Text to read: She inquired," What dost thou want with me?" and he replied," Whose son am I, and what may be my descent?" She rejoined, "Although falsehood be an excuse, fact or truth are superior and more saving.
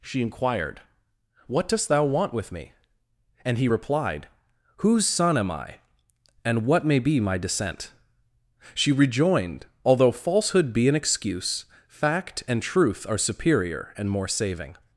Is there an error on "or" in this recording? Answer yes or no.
yes